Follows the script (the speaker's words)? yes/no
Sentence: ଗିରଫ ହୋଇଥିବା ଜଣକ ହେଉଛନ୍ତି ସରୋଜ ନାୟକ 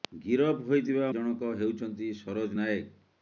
yes